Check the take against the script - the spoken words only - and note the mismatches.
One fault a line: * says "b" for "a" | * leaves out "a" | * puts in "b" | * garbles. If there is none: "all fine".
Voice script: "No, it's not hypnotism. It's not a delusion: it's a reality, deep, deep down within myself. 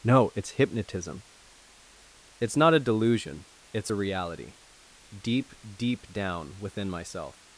* leaves out "not"